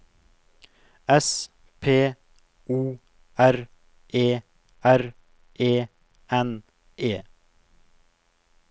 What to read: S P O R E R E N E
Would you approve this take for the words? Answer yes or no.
yes